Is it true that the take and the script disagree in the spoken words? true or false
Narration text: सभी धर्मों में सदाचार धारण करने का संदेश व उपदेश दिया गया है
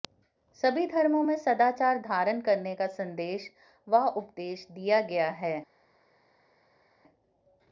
false